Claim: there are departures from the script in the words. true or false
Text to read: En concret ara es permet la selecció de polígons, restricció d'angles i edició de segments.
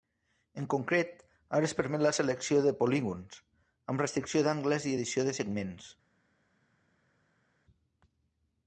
true